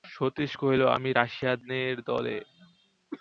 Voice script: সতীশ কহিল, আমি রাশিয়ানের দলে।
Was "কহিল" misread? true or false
false